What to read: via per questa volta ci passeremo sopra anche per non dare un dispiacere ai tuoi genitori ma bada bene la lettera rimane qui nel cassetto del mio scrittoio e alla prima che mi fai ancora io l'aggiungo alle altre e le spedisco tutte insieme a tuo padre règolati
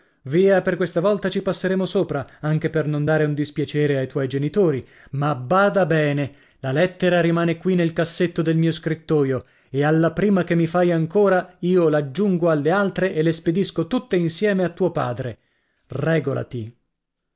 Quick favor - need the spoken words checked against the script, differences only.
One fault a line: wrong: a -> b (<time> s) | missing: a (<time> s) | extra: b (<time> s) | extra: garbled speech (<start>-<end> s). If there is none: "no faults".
no faults